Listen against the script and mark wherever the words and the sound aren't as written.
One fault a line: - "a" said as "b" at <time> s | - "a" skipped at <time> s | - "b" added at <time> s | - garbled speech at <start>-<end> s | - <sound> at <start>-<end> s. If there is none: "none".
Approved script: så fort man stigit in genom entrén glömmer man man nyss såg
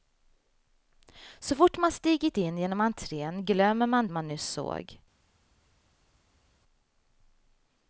none